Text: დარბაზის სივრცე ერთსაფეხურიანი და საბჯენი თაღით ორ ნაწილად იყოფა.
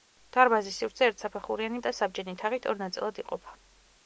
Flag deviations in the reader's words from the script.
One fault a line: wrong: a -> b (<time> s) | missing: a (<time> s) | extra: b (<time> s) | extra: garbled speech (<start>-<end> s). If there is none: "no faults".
no faults